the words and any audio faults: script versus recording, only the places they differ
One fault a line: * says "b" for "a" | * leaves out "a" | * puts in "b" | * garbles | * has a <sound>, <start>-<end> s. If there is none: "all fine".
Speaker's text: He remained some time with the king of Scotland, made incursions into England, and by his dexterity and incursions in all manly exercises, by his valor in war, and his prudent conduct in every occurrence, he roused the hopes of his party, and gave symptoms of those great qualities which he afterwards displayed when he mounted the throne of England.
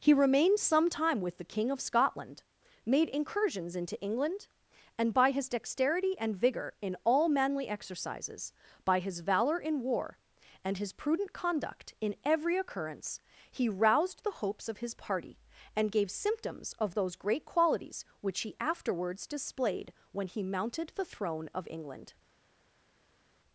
* says "vigor" for "incursions"